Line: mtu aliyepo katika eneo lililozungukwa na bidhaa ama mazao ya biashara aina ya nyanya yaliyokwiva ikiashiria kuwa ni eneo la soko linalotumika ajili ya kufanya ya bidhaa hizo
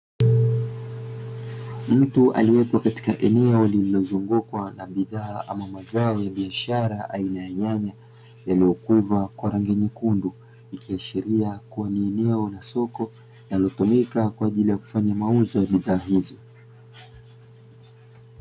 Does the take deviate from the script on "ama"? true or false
false